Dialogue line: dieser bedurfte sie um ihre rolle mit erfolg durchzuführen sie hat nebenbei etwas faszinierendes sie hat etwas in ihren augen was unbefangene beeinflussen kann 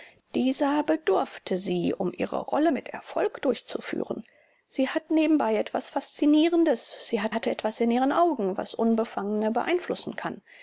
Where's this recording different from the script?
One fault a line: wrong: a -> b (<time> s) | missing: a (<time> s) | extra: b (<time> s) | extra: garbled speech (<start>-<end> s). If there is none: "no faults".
extra: hat (7.3 s)